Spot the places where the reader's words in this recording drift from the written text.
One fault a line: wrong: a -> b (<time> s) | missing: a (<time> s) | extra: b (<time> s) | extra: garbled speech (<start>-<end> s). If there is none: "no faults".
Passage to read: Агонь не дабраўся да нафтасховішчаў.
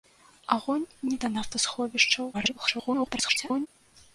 missing: дабраўся (1.2 s)
extra: garbled speech (2.3-3.7 s)